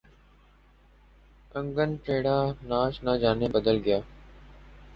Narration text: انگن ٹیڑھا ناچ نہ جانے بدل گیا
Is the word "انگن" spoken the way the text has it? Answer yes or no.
yes